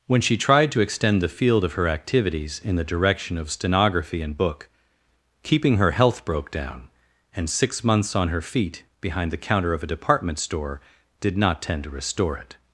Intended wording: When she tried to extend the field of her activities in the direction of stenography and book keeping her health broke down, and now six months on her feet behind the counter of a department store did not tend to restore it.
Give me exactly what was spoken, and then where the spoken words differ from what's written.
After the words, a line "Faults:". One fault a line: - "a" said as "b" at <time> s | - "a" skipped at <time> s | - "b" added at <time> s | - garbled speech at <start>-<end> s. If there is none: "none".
When she tried to extend the field of her activities in the direction of stenography and book keeping her health broke down, and six months on her feet behind the counter of a department store did not tend to restore it.
Faults:
- "now" skipped at 7.5 s